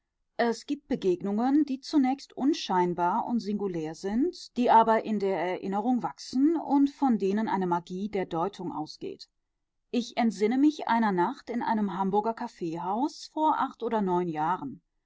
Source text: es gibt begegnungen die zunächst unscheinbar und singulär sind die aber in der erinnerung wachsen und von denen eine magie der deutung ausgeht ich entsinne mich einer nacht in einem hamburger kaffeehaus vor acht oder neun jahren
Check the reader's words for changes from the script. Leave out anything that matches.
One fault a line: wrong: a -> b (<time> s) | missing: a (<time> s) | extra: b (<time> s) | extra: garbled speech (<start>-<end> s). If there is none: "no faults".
no faults